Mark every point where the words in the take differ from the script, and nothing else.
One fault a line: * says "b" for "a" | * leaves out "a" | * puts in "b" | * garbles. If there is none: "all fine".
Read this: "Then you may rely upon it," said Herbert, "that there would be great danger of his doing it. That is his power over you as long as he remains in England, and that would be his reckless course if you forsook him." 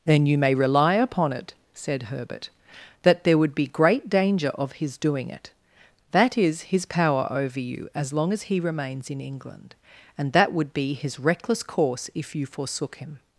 all fine